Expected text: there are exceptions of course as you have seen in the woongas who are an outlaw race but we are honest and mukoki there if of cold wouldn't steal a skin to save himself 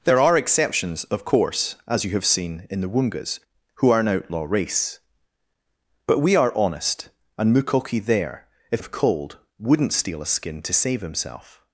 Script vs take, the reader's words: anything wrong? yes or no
no